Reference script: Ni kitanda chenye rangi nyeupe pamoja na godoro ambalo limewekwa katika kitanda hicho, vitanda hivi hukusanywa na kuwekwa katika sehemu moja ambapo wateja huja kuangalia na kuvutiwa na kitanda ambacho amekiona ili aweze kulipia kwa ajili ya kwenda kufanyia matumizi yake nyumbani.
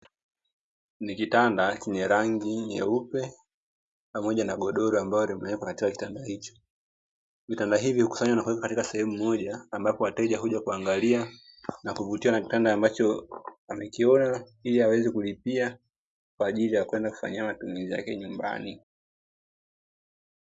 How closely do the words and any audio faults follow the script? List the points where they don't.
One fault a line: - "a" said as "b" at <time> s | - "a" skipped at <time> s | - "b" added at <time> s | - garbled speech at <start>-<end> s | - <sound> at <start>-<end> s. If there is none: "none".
none